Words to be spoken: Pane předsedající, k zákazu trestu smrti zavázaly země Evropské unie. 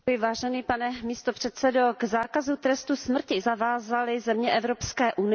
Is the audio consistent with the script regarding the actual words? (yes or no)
yes